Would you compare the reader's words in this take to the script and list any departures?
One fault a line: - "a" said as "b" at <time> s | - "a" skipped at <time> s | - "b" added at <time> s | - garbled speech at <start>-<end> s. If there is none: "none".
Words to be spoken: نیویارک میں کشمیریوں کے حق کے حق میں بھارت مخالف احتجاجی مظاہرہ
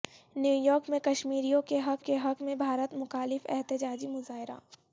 none